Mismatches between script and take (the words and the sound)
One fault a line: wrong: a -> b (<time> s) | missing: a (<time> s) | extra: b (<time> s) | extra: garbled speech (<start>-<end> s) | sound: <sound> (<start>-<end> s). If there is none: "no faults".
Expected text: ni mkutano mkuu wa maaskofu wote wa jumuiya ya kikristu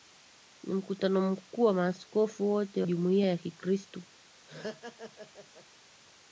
missing: wa (2.8 s)
sound: laugh (4.5-5.7 s)